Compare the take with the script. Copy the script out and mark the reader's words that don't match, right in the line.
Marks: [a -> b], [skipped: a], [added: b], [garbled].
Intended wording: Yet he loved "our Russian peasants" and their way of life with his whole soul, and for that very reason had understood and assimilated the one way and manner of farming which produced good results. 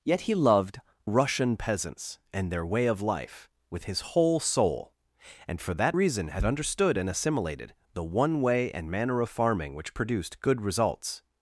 Yet he loved [skipped: "our] Russian peasants" and their way of life with his whole soul, and for that [skipped: very] reason had understood and assimilated the one way and manner of farming which produced good results.